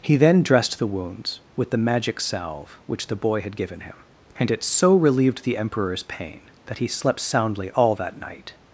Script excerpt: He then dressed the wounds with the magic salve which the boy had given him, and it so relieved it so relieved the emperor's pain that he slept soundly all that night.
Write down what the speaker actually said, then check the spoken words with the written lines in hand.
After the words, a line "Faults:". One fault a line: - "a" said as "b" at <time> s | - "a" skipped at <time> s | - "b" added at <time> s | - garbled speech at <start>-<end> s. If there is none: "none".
He then dressed the wounds with the magic salve which the boy had given him, and it so relieved the emperor's pain that he slept soundly all that night.
Faults:
- "it so relieved" skipped at 5.4 s